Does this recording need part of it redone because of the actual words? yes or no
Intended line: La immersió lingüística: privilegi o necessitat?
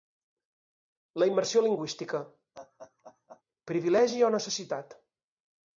no